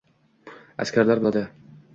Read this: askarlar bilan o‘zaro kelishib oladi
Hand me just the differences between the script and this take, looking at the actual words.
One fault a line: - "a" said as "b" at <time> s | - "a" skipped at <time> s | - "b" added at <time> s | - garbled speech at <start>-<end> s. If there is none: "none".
- "bilan o‘zaro kelishib" skipped at 1.2 s